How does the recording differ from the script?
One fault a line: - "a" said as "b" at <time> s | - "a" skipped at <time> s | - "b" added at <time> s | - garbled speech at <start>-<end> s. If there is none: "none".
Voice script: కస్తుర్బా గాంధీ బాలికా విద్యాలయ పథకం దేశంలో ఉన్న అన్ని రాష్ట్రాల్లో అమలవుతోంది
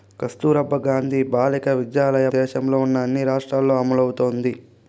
- "పథకం" skipped at 2.3 s